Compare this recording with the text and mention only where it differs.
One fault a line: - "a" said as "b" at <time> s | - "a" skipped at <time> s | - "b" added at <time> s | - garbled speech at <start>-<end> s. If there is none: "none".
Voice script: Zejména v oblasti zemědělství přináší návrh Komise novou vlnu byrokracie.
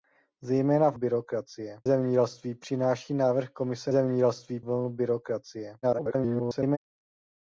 - "oblasti" said as "byrokracie" at 0.9 s
- "novou" said as "zemědělství" at 3.9 s
- garbled speech at 5.8-6.8 s